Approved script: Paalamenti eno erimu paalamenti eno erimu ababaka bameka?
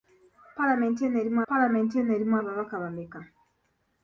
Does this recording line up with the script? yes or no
yes